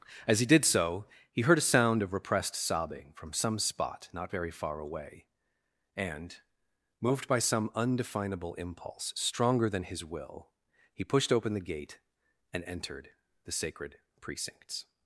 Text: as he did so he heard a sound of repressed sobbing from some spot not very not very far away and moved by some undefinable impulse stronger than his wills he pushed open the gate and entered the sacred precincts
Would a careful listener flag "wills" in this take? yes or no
yes